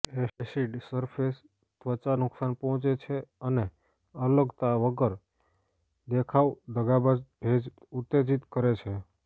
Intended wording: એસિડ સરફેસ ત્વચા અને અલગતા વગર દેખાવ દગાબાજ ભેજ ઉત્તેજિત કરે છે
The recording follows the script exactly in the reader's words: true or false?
false